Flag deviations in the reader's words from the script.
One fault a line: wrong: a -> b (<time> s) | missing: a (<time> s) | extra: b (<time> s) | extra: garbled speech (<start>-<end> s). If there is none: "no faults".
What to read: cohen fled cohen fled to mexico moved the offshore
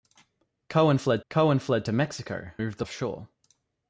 no faults